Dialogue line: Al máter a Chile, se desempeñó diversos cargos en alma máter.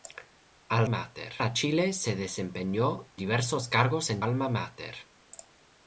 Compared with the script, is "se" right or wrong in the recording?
right